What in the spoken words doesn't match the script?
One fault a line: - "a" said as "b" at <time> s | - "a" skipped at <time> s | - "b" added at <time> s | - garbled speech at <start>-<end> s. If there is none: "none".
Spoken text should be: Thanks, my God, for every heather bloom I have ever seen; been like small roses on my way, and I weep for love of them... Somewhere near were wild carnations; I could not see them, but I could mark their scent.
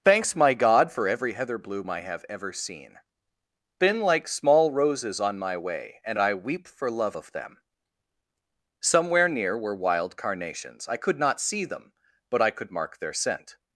none